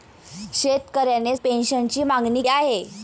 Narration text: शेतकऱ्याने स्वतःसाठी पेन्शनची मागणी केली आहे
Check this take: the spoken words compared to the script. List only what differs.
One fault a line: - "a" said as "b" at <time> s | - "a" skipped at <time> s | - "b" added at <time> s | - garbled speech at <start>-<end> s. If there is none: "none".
- "स्वतःसाठी" skipped at 1.4 s
- "केली" skipped at 2.4 s